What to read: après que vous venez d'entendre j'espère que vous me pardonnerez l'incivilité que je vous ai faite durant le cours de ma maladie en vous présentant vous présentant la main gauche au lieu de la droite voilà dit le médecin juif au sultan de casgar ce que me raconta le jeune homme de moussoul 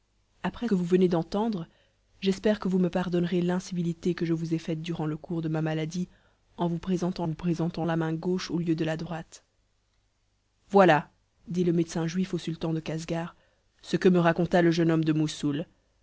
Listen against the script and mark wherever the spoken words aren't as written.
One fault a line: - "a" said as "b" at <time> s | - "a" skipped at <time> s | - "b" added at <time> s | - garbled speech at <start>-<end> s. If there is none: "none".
none